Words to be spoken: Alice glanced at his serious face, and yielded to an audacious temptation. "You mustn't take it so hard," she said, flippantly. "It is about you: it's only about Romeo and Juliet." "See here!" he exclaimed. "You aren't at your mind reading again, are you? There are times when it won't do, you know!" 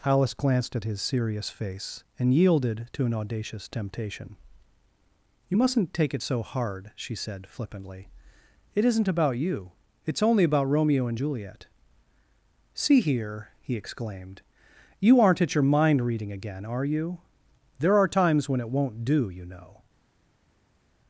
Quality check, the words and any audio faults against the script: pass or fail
fail